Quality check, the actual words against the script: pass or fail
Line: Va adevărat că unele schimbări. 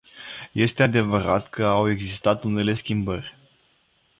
fail